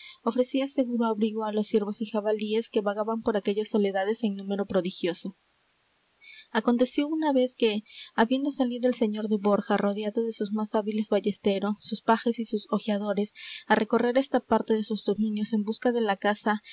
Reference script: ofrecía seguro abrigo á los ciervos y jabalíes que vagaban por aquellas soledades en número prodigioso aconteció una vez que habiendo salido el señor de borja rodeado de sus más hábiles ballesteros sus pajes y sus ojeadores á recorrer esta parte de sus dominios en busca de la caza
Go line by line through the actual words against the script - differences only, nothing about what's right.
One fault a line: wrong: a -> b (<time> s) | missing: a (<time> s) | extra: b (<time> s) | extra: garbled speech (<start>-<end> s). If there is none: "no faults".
no faults